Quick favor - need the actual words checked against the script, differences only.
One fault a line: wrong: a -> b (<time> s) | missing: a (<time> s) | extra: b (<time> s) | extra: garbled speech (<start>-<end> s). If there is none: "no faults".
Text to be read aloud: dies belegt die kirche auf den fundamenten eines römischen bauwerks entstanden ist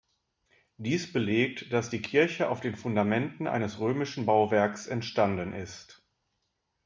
extra: dass (1.7 s)